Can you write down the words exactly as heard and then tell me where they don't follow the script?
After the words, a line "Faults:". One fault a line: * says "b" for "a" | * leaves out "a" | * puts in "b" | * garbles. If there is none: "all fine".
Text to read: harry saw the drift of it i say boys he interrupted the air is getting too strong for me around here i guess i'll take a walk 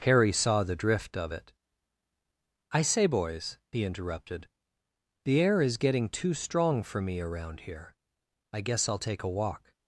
harry saw the drift of it i say boys he interrupted the air is getting too strong for me around here i guess i'll take a walk
Faults:
all fine